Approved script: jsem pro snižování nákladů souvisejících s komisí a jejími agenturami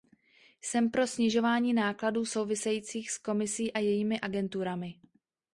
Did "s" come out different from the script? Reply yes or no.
no